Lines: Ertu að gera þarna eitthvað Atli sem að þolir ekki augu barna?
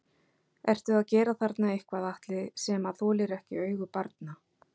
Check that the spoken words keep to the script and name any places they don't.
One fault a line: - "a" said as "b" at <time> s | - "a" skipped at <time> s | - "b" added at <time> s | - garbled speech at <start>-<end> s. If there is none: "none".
none